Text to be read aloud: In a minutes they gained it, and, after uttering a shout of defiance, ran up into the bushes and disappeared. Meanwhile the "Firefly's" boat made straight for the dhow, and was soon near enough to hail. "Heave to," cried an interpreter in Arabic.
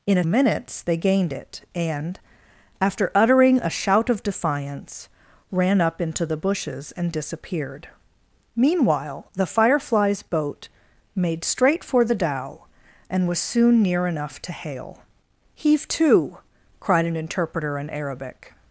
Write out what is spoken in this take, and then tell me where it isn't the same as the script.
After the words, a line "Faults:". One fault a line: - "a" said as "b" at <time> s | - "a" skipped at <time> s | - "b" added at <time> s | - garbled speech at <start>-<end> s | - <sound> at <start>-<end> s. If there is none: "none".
In a minutes they gained it, and, after uttering a shout of defiance, ran up into the bushes and disappeared. Meanwhile the "Firefly's" boat made straight for the dhow, and was soon near enough to hail. "Heave to," cried an interpreter in Arabic.
Faults:
none